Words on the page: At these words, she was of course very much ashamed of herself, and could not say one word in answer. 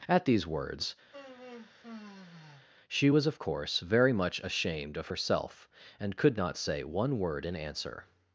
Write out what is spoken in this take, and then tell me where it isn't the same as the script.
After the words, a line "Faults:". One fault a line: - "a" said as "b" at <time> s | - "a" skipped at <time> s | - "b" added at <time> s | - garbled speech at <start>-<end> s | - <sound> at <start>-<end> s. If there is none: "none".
At these words, she was of course very much ashamed of herself, and could not say one word in answer.
Faults:
- sigh at 1.1-2.7 s